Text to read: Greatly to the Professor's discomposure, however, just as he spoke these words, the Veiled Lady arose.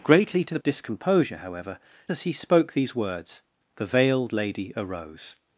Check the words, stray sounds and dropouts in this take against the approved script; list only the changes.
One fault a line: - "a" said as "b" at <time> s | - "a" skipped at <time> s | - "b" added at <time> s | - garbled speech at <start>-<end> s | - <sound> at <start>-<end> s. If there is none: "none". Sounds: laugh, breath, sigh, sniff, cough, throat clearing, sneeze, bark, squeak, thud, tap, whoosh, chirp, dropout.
- "Professor's" skipped at 0.6 s
- "just" skipped at 1.8 s